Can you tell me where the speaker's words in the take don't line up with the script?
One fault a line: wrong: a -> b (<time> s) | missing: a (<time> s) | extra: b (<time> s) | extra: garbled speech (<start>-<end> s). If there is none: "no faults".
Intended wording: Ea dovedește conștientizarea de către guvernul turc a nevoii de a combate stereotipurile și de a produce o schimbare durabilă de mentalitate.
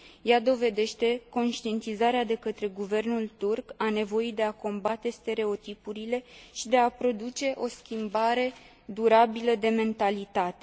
no faults